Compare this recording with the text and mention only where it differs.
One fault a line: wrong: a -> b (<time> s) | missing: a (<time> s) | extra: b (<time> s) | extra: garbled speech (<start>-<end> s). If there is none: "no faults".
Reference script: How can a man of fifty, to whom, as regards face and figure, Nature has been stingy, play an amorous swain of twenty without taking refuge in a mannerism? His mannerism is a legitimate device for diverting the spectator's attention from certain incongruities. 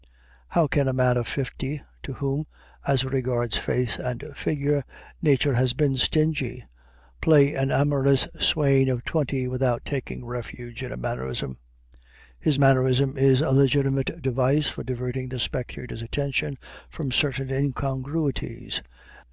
no faults